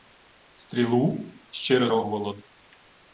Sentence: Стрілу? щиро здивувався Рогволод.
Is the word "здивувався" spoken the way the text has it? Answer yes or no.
no